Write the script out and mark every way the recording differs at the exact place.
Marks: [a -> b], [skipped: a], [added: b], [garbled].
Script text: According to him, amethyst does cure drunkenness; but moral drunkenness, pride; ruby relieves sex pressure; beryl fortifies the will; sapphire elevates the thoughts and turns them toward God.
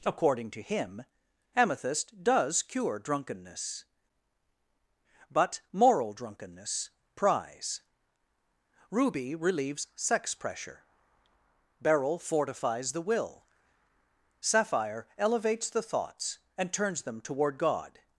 According to him, amethyst does cure drunkenness; but moral drunkenness, [pride; -> prize] ruby relieves sex pressure; beryl fortifies the will; sapphire elevates the thoughts and turns them toward God.